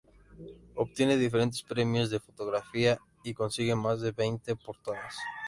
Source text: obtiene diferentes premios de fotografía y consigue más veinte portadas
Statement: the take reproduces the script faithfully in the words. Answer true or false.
false